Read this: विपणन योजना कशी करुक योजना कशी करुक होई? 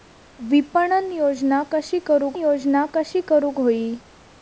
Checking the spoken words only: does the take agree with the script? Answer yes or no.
yes